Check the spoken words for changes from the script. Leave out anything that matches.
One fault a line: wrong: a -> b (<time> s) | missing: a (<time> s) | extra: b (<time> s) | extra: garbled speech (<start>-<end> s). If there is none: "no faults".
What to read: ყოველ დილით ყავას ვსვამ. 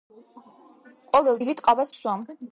no faults